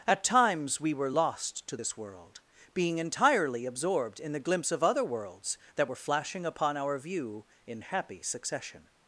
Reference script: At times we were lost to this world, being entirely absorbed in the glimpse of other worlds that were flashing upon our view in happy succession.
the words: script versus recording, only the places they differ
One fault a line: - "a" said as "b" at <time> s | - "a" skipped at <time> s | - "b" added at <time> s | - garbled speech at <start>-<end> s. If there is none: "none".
none